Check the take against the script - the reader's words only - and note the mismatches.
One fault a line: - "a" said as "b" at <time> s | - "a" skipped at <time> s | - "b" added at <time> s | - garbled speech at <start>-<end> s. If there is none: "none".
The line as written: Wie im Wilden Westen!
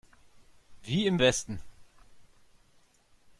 - "Wilden" skipped at 1.2 s